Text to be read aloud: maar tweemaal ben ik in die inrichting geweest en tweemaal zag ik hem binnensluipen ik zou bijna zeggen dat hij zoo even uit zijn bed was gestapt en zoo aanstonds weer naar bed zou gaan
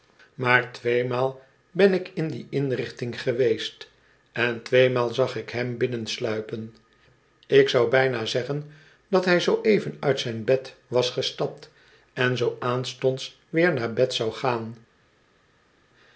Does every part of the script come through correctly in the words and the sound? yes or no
yes